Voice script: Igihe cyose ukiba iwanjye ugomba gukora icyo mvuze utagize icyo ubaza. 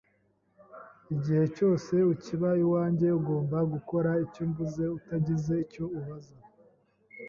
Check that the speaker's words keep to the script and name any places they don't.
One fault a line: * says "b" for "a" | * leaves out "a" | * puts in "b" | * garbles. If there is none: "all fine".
all fine